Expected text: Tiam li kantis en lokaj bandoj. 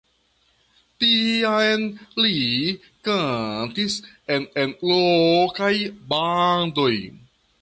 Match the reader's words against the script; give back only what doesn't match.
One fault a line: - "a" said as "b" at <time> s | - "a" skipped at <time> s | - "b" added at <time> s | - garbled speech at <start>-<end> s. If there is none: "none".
- "en" added at 4.6 s